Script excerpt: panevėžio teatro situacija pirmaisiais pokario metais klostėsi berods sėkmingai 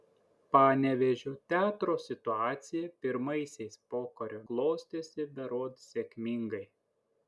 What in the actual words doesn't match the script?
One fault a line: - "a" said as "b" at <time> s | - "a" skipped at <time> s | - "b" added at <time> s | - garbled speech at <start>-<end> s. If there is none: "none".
- "metais" skipped at 4.4 s